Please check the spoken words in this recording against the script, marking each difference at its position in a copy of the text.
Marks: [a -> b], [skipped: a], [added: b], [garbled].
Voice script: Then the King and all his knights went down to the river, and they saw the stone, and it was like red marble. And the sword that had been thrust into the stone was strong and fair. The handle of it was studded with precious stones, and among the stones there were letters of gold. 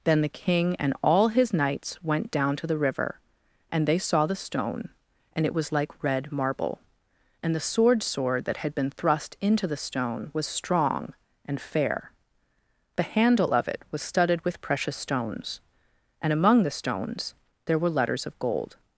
Then the King and all his knights went down to the river, and they saw the stone, and it was like red marble. And the sword [added: sword] that had been thrust into the stone was strong and fair. The handle of it was studded with precious stones, and among the stones there were letters of gold.